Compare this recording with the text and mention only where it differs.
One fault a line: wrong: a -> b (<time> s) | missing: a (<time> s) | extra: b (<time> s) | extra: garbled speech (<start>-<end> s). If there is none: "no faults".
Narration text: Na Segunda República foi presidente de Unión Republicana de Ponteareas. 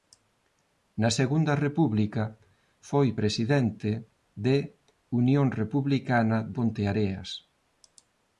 missing: de (6.4 s)